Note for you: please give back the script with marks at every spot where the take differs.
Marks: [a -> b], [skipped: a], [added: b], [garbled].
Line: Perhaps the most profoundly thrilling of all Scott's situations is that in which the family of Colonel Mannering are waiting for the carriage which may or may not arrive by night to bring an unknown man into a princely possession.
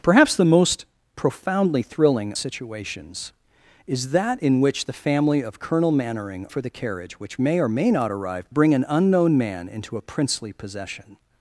Perhaps the most profoundly thrilling [skipped: of all Scott's] situations is that in which the family of Colonel Mannering [skipped: are waiting] for the carriage which may or may not arrive [skipped: by night to] bring an unknown man into a princely possession.